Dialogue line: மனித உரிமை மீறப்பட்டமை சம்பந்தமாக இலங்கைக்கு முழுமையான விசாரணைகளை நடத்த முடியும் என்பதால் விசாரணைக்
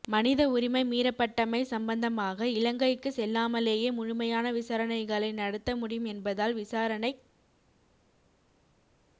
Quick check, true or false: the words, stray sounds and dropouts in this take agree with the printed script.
false